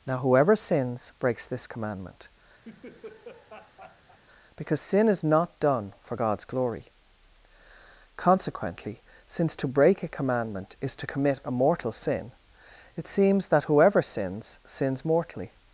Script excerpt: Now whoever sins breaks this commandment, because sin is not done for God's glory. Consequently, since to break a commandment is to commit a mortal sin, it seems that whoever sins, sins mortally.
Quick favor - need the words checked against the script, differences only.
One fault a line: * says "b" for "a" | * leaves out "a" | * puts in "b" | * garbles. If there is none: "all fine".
all fine